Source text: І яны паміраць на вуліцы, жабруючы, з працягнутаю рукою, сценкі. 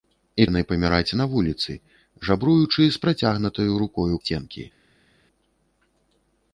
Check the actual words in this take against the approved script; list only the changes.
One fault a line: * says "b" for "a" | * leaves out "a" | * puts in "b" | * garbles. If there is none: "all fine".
all fine